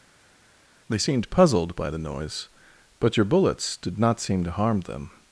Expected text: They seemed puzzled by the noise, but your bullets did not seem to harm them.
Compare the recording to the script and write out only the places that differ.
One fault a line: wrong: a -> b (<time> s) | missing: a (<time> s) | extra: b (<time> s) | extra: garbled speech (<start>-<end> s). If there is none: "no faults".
no faults